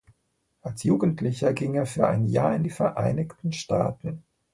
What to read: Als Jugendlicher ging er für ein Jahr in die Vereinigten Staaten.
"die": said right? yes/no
yes